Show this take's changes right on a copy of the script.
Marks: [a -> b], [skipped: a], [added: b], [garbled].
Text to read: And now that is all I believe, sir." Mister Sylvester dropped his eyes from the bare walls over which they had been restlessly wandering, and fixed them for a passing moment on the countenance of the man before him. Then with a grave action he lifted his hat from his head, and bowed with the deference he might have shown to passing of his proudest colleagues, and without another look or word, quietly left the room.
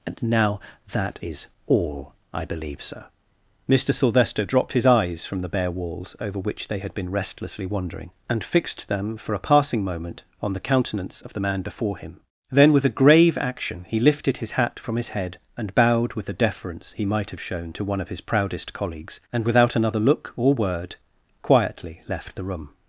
And now that is all I believe, sir." Mister Sylvester dropped his eyes from the bare walls over which they had been restlessly wandering, and fixed them for a passing moment on the countenance of the man before him. Then with a grave action he lifted his hat from his head, and bowed with the deference he might have shown to [passing -> one] of his proudest colleagues, and without another look or word, quietly left the room.